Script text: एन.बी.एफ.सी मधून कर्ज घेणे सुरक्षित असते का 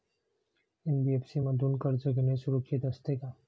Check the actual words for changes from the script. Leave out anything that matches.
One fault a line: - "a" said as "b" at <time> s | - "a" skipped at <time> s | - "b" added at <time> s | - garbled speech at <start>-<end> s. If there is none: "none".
none